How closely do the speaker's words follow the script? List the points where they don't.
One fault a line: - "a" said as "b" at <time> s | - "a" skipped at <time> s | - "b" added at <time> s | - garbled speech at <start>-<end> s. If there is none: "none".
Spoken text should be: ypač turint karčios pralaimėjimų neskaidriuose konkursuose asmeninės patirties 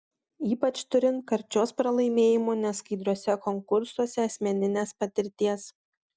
none